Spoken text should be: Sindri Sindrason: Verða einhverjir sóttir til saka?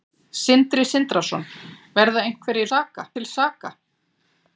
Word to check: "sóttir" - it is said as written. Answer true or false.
false